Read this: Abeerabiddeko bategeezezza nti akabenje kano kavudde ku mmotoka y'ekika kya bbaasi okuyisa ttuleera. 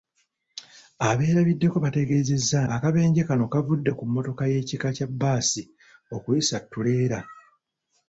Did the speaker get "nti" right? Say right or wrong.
wrong